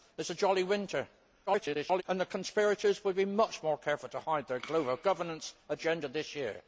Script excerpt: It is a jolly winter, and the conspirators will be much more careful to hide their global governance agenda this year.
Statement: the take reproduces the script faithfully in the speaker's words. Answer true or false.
false